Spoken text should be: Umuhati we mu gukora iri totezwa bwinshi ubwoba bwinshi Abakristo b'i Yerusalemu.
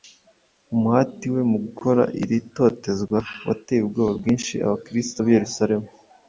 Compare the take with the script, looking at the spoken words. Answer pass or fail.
fail